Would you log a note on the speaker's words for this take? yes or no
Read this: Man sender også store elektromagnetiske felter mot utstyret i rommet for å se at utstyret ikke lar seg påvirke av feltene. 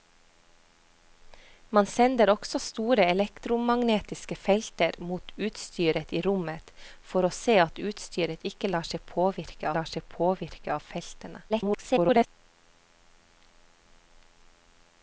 yes